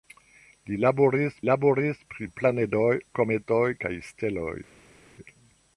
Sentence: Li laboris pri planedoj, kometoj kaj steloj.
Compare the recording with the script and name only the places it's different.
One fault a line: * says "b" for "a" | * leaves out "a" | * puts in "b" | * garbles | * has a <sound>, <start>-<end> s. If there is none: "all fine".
* puts in "laboris"